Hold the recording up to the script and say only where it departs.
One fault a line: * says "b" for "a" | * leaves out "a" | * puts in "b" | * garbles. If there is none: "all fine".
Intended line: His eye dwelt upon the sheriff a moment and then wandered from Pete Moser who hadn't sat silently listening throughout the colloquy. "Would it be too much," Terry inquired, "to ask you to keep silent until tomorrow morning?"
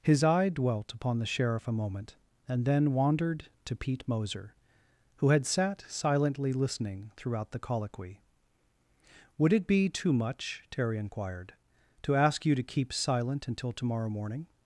* says "to" for "from"
* says "had" for "hadn't"